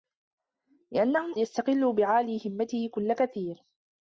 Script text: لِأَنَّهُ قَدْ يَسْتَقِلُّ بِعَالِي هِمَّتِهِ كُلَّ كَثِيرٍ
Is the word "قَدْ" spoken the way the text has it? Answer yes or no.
no